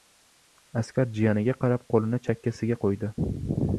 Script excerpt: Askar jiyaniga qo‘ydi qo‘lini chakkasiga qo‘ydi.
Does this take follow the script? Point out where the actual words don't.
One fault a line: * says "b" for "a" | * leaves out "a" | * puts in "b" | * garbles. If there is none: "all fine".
* says "qarab" for "qo‘ydi"